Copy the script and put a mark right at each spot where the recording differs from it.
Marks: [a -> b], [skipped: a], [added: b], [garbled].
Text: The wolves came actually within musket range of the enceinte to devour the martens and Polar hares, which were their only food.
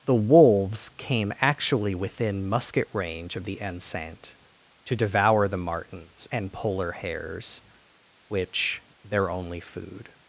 The wolves came actually within musket range of the enceinte to devour the martens and Polar hares, which [skipped: were] their only food.